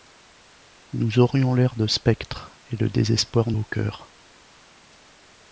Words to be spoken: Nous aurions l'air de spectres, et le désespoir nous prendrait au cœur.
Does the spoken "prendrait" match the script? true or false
false